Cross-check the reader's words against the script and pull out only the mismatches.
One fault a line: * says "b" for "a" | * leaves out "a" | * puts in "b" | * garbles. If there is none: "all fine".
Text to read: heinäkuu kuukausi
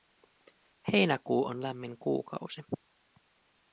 * puts in "on lämmin"